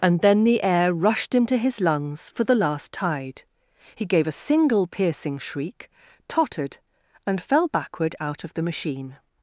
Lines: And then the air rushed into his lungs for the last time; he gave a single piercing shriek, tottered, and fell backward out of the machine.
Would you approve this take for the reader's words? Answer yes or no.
no